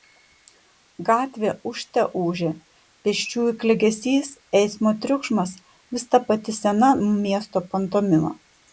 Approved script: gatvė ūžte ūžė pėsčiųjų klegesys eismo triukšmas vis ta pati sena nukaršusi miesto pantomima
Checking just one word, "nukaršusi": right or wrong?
wrong